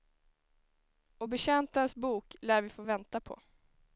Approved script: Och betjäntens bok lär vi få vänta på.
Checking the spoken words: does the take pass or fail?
pass